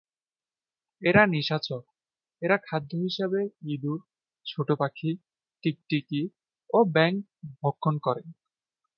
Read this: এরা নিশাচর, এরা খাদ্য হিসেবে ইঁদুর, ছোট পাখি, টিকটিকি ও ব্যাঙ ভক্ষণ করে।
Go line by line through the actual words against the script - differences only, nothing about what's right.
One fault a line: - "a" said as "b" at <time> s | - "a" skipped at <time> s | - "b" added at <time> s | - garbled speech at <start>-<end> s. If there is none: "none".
none